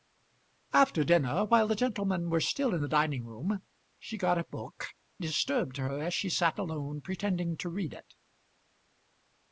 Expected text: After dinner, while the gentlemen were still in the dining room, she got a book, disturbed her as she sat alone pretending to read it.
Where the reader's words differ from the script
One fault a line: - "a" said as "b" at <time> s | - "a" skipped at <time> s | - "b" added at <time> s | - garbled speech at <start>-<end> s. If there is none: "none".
none